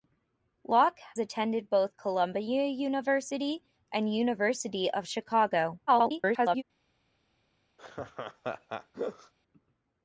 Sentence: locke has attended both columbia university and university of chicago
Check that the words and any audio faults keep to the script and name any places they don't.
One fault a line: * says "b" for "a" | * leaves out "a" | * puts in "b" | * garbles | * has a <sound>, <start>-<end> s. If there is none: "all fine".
* leaves out "has"
* garbles
* has a laugh, 7.8-9.3 s